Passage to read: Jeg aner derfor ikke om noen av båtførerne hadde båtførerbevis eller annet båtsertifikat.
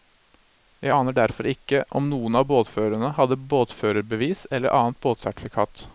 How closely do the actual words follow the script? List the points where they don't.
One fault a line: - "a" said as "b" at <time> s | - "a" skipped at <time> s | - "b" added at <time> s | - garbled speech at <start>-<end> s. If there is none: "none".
none